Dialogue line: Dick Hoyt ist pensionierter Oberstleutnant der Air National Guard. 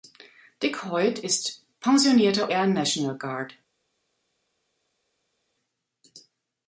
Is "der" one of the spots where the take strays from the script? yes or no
yes